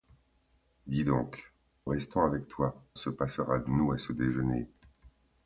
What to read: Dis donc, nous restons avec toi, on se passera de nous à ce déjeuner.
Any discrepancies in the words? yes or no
yes